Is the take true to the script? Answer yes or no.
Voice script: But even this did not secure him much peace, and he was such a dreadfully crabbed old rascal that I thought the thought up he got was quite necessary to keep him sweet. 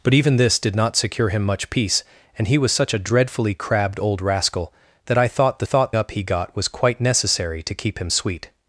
yes